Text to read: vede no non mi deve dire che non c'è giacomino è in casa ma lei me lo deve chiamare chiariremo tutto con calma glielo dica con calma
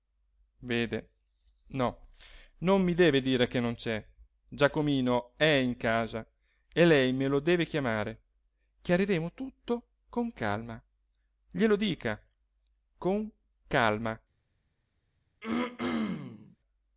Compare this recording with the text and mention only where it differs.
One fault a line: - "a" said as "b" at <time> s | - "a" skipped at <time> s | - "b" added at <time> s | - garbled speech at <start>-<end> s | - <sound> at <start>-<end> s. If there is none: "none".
- "ma" said as "e" at 6.7 s
- throat clearing at 15.4-16.6 s